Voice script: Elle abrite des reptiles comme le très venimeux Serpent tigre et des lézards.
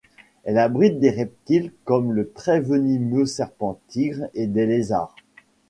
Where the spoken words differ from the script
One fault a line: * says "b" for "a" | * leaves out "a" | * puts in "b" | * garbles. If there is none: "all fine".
all fine